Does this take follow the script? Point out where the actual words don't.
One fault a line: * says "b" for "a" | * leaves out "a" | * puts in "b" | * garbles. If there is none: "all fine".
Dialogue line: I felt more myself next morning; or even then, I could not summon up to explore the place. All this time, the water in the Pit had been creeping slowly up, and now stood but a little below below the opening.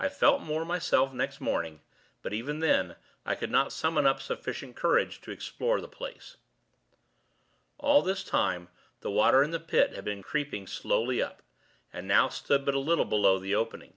* says "but" for "or"
* puts in "sufficient courage"
* leaves out "below"